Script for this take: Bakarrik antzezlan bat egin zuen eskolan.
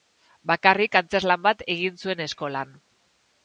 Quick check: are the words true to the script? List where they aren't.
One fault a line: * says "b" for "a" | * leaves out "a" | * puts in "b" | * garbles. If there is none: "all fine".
all fine